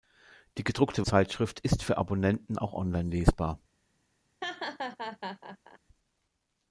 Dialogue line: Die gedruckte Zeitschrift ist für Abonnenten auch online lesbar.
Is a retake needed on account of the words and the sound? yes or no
yes